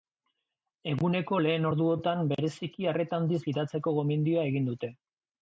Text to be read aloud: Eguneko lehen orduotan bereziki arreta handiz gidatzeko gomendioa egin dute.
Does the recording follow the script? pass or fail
pass